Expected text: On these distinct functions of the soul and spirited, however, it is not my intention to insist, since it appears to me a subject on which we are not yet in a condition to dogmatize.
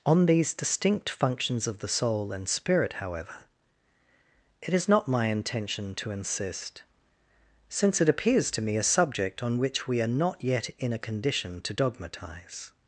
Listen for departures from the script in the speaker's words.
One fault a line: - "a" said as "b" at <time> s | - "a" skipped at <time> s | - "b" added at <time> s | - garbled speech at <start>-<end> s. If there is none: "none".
- "spirited" said as "spirit" at 2.5 s